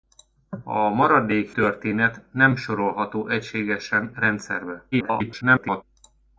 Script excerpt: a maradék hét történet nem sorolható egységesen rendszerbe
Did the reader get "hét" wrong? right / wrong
wrong